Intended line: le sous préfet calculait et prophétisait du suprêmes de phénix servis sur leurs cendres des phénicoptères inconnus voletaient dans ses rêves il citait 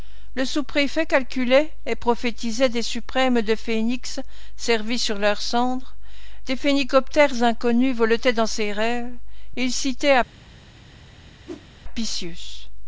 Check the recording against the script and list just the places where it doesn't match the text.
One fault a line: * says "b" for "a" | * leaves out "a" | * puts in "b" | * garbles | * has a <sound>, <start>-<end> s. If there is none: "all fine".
* says "des" for "du"
* has a whoosh, 11.5-11.7 s